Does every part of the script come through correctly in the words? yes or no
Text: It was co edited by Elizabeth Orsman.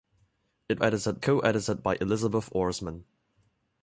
no